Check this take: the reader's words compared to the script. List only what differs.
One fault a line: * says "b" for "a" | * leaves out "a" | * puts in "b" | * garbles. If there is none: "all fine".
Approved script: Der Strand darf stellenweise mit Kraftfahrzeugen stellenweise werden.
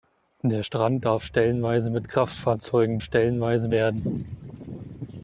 all fine